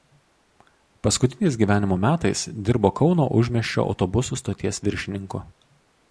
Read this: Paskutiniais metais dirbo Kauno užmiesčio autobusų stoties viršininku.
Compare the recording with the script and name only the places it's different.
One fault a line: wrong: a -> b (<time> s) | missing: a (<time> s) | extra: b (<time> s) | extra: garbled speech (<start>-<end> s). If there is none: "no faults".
extra: gyvenimo (1.6 s)